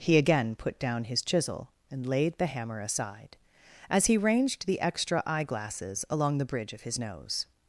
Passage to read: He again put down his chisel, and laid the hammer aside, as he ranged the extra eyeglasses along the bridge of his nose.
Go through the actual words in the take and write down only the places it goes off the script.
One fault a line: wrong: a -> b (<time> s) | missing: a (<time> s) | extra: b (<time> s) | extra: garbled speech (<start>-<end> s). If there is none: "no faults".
no faults